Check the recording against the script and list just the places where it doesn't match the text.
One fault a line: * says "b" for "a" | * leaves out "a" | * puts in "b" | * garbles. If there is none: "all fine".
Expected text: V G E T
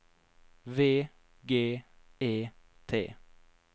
all fine